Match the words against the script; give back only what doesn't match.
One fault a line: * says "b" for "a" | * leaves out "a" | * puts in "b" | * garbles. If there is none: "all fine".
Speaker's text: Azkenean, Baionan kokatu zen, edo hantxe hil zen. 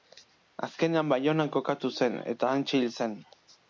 * says "eta" for "edo"